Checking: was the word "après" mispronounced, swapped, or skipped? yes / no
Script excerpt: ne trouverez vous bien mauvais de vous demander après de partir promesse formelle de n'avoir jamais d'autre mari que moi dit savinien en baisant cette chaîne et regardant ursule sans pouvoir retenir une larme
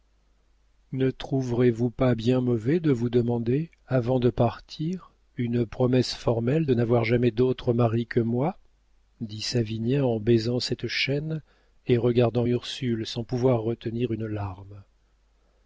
yes